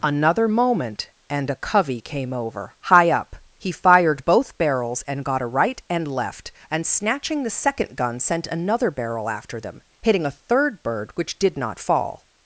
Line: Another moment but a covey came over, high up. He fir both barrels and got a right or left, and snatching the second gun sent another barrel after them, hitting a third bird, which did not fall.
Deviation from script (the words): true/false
true